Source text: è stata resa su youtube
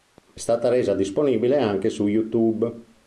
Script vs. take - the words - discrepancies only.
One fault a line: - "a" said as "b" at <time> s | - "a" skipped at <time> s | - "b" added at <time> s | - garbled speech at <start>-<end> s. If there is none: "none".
- "disponibile anche" added at 1.0 s